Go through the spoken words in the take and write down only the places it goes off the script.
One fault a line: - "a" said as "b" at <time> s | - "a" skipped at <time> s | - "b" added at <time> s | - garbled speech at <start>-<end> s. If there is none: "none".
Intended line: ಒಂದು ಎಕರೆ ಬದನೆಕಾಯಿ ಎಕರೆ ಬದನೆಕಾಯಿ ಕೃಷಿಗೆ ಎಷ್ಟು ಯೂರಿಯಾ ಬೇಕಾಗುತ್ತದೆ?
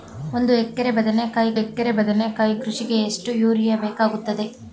none